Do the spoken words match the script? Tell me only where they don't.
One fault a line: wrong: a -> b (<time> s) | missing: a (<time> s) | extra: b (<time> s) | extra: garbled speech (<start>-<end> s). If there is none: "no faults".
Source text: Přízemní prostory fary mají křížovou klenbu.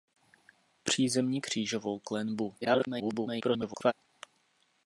missing: prostory fary mají (1.4 s)
extra: garbled speech (2.6-3.9 s)